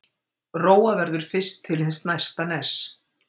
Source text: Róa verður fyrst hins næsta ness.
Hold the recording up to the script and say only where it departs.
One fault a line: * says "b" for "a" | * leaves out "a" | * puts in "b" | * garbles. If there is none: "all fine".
* puts in "til"